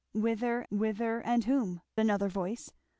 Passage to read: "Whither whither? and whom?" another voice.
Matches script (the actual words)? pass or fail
pass